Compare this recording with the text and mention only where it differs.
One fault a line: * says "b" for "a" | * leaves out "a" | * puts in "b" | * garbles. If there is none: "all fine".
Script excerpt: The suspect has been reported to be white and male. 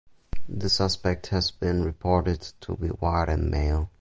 all fine